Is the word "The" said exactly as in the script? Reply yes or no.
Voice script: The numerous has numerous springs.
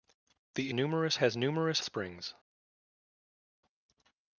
yes